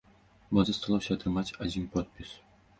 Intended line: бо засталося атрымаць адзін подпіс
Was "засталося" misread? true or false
false